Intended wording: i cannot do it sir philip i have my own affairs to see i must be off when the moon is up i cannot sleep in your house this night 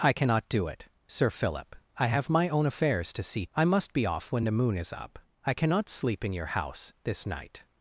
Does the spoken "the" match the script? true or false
true